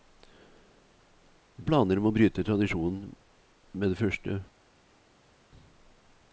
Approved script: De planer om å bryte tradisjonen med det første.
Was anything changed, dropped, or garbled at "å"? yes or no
no